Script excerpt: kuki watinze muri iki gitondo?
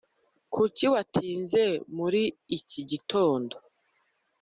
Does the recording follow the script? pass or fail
pass